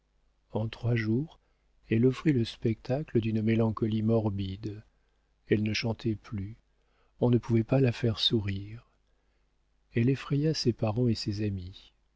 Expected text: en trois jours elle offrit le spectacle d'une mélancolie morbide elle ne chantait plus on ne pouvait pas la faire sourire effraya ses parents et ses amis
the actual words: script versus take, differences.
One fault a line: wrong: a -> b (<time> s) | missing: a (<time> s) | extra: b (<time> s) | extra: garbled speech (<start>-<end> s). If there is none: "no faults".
extra: elle (9.9 s)